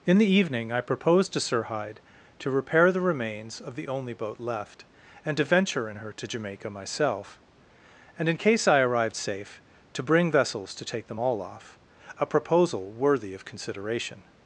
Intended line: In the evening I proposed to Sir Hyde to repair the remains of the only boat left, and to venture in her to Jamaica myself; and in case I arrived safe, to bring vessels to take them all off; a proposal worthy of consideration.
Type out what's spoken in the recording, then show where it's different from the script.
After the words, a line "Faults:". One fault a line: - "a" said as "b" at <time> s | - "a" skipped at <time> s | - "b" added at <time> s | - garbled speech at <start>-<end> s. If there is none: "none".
In the evening I proposed to Sir Hyde to repair the remains of the only boat left, and to venture in her to Jamaica myself; and in case I arrived safe, to bring vessels to take them all off; a proposal worthy of consideration.
Faults:
none